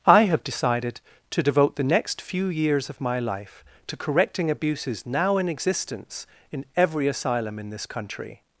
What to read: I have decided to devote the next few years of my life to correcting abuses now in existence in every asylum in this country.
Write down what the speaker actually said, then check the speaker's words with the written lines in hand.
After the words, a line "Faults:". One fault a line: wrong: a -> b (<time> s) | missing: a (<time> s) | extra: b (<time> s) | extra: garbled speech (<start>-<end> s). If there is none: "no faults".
I have decided to devote the next few years of my life to correcting abuses now in existence in every asylum in this country.
Faults:
no faults